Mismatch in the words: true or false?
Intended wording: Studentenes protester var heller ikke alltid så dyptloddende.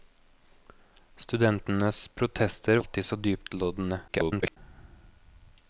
true